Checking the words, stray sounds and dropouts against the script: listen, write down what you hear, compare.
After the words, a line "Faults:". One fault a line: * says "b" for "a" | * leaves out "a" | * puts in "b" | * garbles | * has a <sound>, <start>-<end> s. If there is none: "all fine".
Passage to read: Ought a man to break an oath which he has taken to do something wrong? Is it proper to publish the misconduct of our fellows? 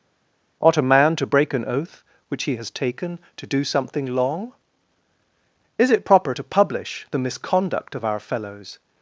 Ought a man to break an oath which he has taken to do something long? Is it proper to publish the misconduct of our fellows?
Faults:
* says "long" for "wrong"